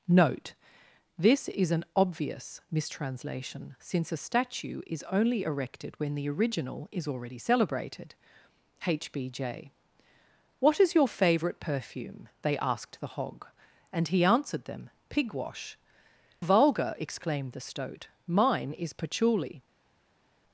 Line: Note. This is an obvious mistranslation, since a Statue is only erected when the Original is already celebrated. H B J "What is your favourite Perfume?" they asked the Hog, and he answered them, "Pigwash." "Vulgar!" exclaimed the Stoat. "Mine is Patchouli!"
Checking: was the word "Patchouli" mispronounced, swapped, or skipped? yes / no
no